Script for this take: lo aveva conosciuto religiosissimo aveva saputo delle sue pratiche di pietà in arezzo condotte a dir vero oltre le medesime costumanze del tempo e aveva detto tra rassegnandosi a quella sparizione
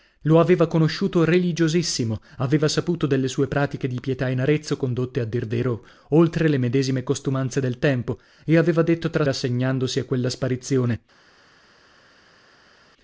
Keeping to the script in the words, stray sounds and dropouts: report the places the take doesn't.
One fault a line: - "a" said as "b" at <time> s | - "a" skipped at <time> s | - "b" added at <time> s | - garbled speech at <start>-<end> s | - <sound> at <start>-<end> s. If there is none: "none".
none